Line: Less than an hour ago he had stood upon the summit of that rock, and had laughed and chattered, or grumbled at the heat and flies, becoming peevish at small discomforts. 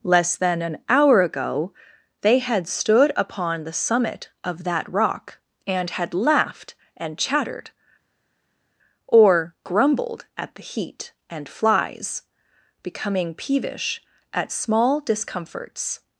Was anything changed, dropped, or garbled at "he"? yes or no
yes